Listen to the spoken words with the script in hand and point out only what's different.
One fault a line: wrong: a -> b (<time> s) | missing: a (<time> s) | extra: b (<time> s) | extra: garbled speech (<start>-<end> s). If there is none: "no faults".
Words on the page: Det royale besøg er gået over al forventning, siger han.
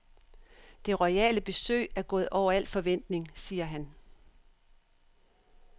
no faults